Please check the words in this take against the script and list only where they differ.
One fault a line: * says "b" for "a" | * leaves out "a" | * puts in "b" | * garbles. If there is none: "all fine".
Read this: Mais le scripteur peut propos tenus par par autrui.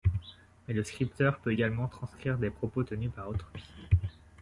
* puts in "également transcrire des"
* leaves out "par"